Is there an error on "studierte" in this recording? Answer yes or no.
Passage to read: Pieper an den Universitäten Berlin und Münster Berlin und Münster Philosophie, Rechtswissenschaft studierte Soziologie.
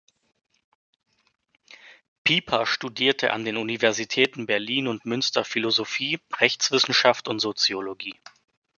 yes